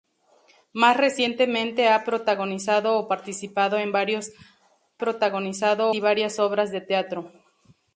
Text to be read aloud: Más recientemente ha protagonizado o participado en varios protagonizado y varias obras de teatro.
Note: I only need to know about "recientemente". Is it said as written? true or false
true